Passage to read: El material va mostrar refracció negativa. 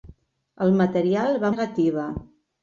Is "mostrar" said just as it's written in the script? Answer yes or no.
no